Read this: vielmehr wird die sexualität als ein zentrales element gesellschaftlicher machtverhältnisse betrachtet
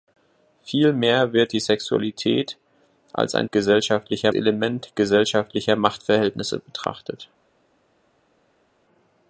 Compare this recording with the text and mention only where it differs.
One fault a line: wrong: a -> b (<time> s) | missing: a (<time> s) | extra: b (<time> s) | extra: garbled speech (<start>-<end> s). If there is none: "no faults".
wrong: zentrales -> gesellschaftlicher (3.5 s)